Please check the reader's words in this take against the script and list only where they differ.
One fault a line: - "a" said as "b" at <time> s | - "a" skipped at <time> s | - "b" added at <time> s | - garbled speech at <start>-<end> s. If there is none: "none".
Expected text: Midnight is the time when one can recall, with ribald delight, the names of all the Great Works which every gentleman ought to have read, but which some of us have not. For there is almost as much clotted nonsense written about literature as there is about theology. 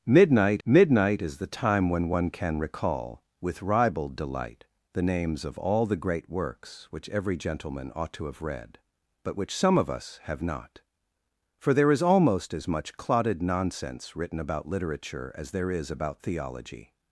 - "midnight" added at 0.7 s